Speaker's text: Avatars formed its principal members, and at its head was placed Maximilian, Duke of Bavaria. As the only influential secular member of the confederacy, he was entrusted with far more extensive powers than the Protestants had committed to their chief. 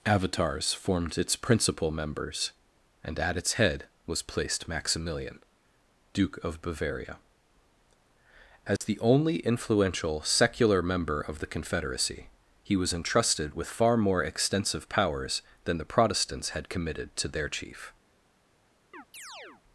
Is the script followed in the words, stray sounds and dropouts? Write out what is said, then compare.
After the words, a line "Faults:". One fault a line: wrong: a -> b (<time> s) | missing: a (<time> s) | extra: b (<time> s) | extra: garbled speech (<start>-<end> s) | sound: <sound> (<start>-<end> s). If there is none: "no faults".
Avatars formed its principal members, and at its head was placed Maximilian, Duke of Bavaria. As the only influential secular member of the confederacy, he was entrusted with far more extensive powers than the Protestants had committed to their chief.
Faults:
sound: dropout (8.8-8.8 s)
sound: chirp (18.9-19.6 s)